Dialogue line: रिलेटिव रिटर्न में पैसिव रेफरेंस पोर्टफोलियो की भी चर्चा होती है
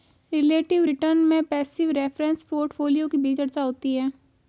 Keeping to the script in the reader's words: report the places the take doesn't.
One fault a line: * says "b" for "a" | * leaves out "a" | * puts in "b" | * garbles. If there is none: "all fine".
all fine